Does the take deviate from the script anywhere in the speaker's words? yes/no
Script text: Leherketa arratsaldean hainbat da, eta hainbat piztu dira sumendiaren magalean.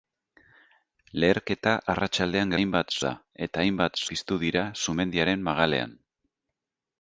no